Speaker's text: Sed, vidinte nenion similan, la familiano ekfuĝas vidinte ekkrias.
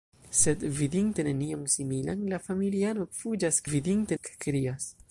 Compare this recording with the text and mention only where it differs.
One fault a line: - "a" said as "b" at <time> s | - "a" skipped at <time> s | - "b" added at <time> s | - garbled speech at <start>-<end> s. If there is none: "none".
none